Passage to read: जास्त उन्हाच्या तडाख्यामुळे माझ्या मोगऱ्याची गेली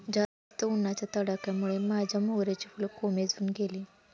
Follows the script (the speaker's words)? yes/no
no